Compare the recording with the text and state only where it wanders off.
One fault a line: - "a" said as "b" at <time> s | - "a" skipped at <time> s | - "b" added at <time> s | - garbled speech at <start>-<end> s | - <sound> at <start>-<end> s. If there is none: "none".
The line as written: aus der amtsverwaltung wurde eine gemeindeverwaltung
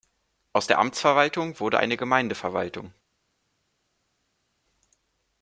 none